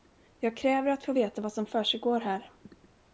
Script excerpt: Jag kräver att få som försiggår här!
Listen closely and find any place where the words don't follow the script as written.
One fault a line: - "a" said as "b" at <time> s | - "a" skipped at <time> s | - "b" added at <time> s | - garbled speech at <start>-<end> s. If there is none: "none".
- "veta vad" added at 1.1 s